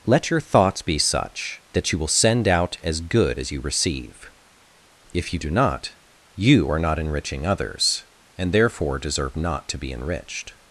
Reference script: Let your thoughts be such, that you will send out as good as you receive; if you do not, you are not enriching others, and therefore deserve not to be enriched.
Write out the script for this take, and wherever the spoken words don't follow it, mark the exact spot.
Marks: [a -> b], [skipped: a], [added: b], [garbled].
Let your thoughts be such, that you will send out as good as you receive; if you do not, you are not enriching others, and therefore deserve not to be enriched.